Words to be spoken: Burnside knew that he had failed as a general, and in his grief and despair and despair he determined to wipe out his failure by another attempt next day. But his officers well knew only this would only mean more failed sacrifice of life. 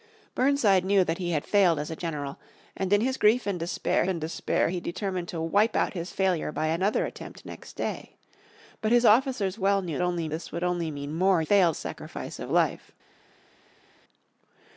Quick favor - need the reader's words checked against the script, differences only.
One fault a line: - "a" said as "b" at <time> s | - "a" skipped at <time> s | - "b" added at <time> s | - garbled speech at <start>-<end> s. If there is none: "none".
none